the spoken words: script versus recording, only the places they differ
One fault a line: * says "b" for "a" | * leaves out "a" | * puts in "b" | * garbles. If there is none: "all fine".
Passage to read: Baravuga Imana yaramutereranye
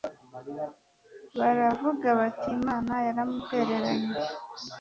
* puts in "bati"